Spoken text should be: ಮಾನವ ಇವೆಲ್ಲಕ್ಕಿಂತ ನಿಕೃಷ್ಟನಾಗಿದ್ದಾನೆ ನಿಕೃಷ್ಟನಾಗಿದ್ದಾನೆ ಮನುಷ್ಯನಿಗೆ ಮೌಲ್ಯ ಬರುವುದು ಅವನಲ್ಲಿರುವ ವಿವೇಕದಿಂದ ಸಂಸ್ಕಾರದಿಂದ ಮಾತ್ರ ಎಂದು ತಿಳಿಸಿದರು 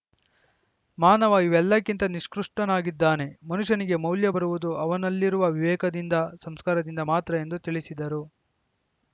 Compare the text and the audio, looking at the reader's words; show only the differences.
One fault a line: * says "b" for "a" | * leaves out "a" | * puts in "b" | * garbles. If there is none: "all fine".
* leaves out "ನಿಕೃಷ್ಟನಾಗಿದ್ದಾನೆ"